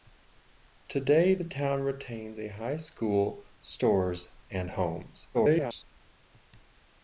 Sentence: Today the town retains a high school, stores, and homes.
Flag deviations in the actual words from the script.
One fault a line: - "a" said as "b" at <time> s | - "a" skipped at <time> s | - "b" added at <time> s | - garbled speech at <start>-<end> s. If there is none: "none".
- garbled speech at 5.3-5.8 s